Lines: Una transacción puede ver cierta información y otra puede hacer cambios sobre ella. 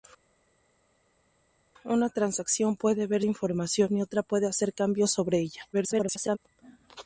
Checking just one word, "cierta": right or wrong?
wrong